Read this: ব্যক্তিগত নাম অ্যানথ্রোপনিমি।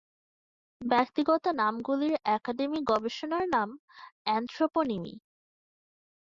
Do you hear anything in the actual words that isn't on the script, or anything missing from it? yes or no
yes